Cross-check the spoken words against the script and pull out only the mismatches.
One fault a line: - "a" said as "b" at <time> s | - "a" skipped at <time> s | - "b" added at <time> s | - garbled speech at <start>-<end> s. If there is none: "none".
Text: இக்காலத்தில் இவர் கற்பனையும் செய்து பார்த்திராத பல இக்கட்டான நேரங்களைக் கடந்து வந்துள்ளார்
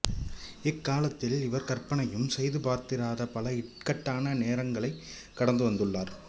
none